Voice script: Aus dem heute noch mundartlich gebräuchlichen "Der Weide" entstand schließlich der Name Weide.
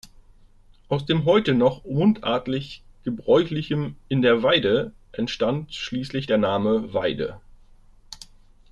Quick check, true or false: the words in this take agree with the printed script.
false